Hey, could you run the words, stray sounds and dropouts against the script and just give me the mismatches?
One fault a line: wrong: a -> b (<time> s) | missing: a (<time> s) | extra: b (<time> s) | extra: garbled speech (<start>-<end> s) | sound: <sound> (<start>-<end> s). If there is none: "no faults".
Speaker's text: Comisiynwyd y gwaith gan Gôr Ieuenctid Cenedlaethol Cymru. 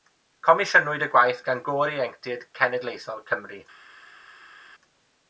no faults